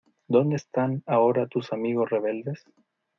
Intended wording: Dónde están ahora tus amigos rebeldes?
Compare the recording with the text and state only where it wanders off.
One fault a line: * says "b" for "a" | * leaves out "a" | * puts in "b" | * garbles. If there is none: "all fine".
all fine